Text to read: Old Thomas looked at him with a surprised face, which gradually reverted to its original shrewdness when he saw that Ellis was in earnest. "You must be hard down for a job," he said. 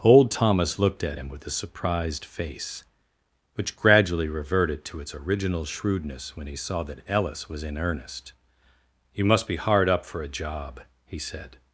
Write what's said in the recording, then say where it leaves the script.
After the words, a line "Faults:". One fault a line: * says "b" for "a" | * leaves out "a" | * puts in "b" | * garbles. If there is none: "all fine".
Old Thomas looked at him with a surprised face, which gradually reverted to its original shrewdness when he saw that Ellis was in earnest. "You must be hard up for a job," he said.
Faults:
* says "up" for "down"